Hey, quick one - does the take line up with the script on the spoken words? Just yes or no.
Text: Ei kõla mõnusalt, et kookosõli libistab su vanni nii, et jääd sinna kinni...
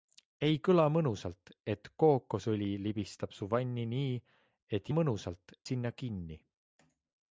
no